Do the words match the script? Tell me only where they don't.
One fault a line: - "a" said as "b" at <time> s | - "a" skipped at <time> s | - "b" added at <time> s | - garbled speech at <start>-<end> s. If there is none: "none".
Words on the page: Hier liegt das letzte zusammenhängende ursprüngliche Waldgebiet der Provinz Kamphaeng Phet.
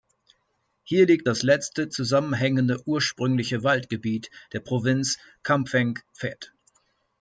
none